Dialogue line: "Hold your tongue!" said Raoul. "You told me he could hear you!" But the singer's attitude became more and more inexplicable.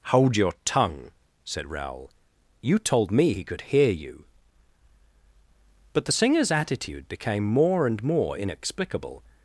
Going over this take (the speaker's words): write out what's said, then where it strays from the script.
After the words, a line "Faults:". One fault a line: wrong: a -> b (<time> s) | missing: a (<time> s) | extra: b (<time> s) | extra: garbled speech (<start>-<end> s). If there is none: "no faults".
"Hold your tongue!" said Raoul. "You told me he could hear you!" But the singer's attitude became more and more inexplicable.
Faults:
no faults